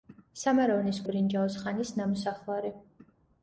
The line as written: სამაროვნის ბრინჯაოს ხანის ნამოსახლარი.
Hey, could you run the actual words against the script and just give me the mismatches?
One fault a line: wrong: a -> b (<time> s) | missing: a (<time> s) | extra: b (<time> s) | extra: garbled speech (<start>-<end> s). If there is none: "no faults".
no faults